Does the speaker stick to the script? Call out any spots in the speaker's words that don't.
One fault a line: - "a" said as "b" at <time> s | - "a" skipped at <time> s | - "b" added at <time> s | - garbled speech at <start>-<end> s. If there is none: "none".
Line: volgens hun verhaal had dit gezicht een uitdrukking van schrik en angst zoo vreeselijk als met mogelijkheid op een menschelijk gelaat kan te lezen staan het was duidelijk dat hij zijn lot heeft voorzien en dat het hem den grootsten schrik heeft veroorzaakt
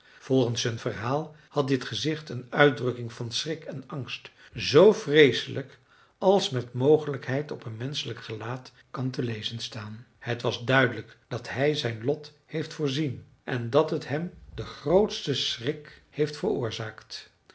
none